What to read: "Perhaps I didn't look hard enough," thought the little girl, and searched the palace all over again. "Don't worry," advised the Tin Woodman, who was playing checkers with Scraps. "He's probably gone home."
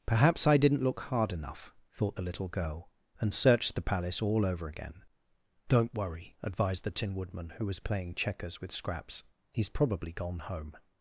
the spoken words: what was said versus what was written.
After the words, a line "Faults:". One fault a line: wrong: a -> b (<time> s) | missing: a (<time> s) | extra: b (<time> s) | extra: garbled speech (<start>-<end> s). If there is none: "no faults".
"Perhaps I didn't look hard enough," thought the little girl, and searched the palace all over again. "Don't worry," advised the Tin Woodman, who was playing checkers with Scraps. "He's probably gone home."
Faults:
no faults